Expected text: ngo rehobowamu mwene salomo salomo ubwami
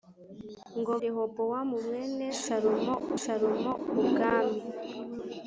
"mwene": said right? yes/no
yes